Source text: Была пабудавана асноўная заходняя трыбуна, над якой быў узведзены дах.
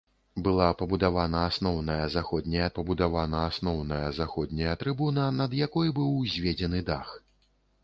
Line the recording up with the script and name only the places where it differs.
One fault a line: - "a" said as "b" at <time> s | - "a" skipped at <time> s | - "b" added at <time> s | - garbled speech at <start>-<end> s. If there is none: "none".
- "пабудавана асноўная заходняя" added at 2.8 s